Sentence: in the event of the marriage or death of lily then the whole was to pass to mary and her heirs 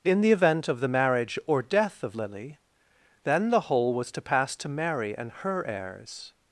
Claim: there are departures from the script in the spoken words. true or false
false